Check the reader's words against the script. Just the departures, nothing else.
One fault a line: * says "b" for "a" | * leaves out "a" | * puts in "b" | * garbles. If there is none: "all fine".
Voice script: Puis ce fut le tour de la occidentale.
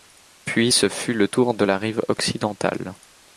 * puts in "rive"